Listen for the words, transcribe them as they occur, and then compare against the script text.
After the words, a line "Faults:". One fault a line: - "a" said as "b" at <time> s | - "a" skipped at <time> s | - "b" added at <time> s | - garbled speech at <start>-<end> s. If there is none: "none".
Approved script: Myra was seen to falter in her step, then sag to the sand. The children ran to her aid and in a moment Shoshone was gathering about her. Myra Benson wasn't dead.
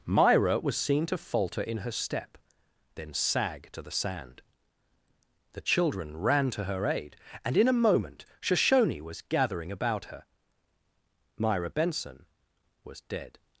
Myra was seen to falter in her step, then sag to the sand. The children ran to her aid and in a moment Shoshone was gathering about her. Myra Benson was dead.
Faults:
- "wasn't" said as "was" at 12.8 s